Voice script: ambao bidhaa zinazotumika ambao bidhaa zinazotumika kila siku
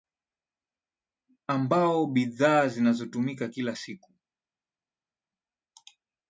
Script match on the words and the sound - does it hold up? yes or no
no